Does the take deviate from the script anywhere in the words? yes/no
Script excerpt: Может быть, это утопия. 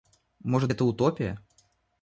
yes